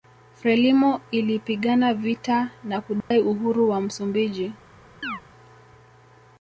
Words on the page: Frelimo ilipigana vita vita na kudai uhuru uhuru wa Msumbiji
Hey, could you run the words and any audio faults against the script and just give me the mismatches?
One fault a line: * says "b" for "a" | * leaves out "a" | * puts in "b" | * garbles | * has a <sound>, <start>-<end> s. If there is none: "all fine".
* leaves out "vita"
* has a dropout, 3.0-3.1 s
* leaves out "uhuru"
* has a chirp, 5.0-5.2 s